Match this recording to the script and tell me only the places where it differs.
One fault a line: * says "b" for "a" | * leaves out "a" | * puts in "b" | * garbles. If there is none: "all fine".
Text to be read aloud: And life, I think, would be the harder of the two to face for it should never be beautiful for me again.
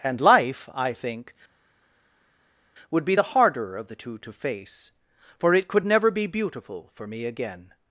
* says "could" for "should"